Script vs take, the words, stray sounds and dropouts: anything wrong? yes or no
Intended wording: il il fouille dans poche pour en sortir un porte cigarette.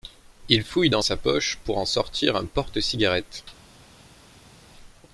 yes